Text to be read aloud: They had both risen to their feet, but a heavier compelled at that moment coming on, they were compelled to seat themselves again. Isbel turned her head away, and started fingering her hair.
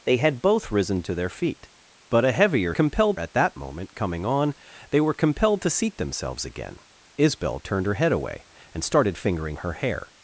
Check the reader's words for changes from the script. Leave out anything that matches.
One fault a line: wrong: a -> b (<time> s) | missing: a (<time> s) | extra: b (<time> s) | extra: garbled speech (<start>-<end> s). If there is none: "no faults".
no faults